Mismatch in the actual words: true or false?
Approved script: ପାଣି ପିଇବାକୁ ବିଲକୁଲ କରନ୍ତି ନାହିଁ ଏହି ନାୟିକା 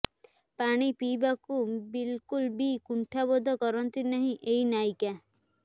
true